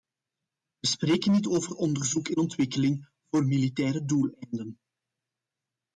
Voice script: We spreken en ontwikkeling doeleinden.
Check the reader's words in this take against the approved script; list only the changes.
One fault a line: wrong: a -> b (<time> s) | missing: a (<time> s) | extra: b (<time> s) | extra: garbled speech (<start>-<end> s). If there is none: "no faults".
extra: niet over onderzoek (1.3 s)
extra: voor militaire (3.2 s)